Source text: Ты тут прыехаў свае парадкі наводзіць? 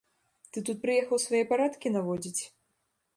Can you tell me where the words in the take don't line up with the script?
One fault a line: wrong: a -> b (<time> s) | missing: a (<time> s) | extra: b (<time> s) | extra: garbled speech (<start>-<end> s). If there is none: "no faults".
no faults